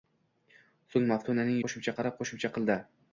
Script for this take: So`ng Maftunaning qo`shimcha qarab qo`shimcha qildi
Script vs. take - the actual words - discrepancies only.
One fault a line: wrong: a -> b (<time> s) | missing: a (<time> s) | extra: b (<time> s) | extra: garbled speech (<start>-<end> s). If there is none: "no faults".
no faults